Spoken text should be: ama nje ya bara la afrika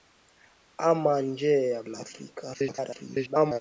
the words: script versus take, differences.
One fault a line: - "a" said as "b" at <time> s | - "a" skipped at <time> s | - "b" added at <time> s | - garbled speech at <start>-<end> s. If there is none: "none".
- "bara" skipped at 1.8 s
- garbled speech at 2.5-3.6 s